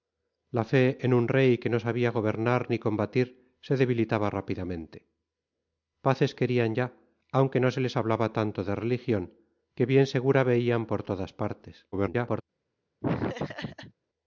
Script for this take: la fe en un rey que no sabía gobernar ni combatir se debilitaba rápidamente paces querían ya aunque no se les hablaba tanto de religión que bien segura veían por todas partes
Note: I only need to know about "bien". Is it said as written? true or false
true